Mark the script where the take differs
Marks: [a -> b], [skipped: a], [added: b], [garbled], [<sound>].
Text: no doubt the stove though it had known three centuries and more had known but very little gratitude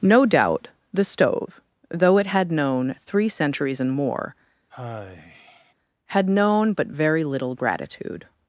no doubt the stove though it had known three centuries and more [sigh] had known but very little gratitude